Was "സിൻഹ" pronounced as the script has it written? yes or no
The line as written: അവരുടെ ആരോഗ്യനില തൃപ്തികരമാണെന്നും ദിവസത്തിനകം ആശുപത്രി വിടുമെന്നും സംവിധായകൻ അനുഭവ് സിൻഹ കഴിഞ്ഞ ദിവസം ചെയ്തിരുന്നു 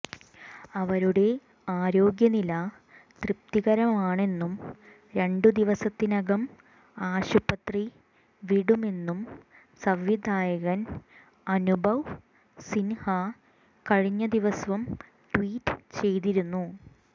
yes